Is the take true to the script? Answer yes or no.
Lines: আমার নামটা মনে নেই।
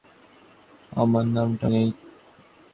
no